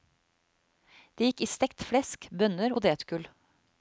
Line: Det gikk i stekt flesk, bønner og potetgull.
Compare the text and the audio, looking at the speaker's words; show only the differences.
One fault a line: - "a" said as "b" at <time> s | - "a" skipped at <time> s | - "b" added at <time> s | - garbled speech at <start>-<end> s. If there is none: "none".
- "og" skipped at 2.7 s